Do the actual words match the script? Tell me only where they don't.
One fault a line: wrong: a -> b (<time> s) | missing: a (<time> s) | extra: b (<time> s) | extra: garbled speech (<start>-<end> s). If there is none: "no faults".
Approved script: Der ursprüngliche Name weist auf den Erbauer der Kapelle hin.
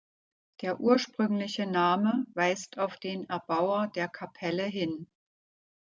no faults